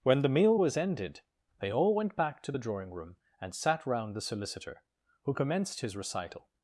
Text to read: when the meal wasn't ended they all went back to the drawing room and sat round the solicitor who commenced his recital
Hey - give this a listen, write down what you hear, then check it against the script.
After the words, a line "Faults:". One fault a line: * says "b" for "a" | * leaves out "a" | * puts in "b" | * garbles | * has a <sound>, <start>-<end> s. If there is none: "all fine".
when the meal was ended they all went back to the drawing room and sat round the solicitor who commenced his recital
Faults:
* says "was" for "wasn't"